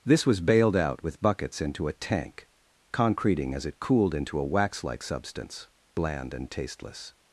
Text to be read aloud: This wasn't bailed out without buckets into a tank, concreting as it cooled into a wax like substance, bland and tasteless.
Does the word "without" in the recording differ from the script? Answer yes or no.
yes